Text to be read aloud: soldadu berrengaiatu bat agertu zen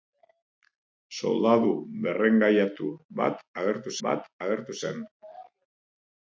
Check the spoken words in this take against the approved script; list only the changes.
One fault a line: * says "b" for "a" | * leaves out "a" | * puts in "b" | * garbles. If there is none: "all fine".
* puts in "bat agertu"